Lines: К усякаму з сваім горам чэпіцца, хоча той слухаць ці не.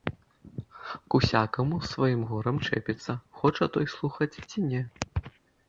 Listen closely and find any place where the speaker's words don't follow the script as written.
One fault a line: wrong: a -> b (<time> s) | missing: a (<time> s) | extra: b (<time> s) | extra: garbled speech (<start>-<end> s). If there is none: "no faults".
no faults